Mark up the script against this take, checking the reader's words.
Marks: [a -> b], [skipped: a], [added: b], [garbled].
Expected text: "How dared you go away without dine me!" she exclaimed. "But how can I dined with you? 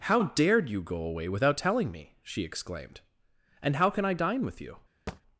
"How dared you go away without [dine -> telling] me!" she exclaimed. ["But -> And] how can I [dined -> dine] with you?